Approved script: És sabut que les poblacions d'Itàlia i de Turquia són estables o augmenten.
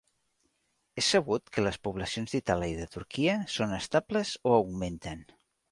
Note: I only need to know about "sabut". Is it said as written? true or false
true